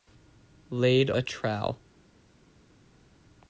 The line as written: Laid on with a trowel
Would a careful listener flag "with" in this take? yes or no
yes